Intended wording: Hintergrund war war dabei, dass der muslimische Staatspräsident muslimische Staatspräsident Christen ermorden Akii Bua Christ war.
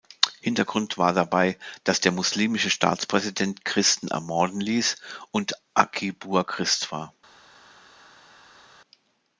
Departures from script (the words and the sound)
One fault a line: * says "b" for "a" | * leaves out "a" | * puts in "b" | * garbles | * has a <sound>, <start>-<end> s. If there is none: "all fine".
* leaves out "war"
* says "Christen ermorden ließ und" for "muslimische Staatspräsident Christen ermorden"